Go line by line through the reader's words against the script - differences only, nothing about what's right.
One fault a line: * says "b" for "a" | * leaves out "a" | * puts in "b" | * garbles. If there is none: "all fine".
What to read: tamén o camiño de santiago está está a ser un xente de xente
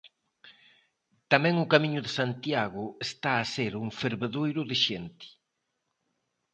* leaves out "está"
* says "fervedoiro" for "xente"